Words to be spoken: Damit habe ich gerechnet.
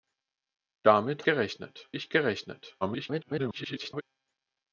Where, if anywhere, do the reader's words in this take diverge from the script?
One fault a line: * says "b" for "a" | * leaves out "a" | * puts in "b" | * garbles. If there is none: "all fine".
* says "gerechnet" for "habe"
* garbles